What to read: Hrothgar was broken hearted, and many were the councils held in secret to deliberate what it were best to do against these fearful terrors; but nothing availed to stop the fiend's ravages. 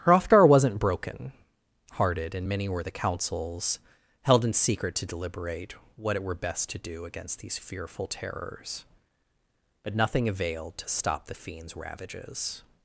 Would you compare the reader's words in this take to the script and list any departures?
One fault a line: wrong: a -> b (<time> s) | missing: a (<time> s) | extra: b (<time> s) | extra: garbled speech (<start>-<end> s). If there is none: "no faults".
wrong: was -> wasn't (0.5 s)